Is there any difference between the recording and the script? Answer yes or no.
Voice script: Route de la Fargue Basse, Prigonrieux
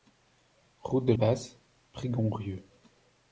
yes